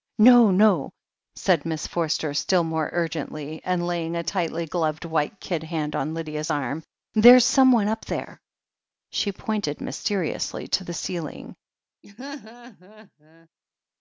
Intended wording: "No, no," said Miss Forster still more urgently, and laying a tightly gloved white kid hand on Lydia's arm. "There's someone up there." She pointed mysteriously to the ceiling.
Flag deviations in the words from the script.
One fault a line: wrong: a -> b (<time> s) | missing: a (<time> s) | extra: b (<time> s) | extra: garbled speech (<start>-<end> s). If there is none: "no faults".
no faults